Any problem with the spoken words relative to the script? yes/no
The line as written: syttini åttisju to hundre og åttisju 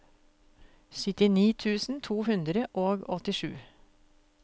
yes